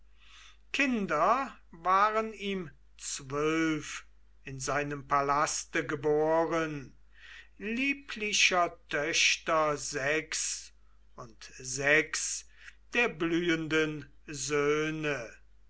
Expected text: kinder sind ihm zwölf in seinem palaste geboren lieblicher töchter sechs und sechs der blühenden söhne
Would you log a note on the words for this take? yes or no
yes